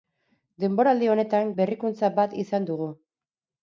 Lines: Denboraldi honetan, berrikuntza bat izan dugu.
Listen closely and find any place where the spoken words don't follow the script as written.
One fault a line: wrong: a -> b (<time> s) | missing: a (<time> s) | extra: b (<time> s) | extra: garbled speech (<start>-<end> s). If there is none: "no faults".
no faults